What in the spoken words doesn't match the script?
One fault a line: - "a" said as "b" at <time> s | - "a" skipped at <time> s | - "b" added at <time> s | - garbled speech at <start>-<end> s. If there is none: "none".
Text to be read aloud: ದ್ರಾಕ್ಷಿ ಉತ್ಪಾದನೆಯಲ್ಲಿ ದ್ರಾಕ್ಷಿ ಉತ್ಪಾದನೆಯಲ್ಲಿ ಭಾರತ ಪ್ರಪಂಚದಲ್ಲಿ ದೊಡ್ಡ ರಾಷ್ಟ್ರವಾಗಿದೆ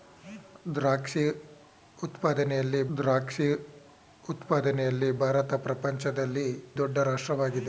none